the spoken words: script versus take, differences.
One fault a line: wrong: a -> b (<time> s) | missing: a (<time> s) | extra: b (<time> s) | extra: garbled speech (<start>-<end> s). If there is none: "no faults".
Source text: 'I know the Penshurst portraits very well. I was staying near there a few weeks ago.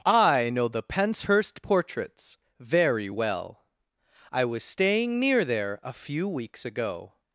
no faults